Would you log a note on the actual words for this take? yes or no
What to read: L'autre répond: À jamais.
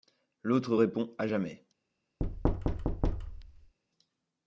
no